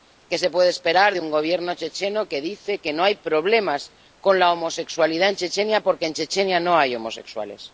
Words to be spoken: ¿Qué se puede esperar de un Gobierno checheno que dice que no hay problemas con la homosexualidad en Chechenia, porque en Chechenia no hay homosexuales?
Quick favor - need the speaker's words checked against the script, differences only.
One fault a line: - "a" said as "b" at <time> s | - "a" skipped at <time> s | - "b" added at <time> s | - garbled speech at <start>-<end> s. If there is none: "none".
none